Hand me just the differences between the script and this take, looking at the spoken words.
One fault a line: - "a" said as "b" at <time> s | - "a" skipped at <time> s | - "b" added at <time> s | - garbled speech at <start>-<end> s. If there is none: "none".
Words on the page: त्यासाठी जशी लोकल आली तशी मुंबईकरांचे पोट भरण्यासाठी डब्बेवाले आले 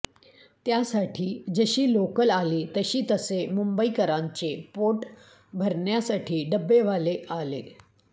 - "तसे" added at 3.1 s